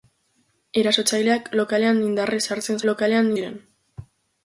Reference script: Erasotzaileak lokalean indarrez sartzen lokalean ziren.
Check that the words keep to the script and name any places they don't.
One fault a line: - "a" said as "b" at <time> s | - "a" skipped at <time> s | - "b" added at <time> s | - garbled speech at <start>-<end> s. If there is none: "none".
none